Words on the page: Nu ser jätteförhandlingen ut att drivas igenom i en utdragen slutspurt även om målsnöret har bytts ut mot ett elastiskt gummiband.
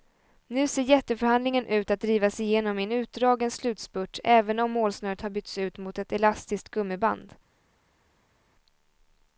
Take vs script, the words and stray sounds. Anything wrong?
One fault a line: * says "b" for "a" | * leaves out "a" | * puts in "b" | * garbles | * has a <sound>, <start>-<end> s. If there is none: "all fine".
all fine